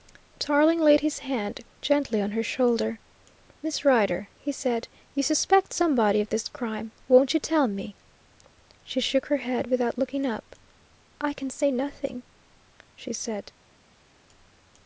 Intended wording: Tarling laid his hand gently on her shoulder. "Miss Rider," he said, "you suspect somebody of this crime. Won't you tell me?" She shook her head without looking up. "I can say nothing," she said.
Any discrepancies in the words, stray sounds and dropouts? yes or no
no